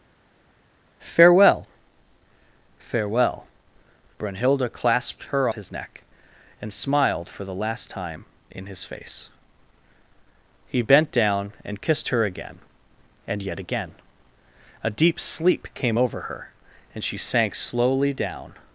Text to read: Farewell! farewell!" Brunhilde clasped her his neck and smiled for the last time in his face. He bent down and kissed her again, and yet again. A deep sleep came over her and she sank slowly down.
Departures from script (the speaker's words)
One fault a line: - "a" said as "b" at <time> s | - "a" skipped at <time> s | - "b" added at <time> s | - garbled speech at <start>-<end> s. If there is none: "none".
none